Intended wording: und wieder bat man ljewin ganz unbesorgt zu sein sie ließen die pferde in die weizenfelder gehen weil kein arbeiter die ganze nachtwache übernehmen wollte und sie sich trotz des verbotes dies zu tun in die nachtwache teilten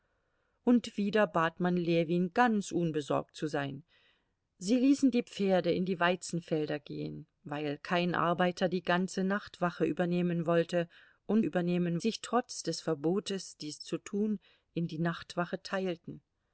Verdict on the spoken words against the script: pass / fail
fail